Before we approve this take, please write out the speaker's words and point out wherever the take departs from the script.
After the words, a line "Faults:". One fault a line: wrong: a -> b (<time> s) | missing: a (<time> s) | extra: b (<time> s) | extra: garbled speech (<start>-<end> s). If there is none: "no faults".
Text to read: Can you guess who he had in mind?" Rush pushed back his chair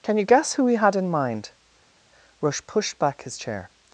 Can you guess who he had in mind?" Rush pushed back his chair
Faults:
no faults